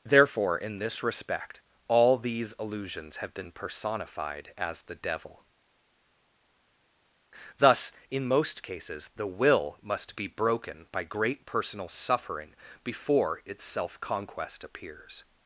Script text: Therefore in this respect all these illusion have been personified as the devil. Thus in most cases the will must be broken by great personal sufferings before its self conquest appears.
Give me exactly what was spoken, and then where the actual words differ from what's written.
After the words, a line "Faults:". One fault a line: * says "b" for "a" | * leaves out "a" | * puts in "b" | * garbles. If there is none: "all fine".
Therefore in this respect all these illusions have been personified as the devil. Thus in most cases the will must be broken by great personal suffering before its self conquest appears.
Faults:
* says "illusions" for "illusion"
* says "suffering" for "sufferings"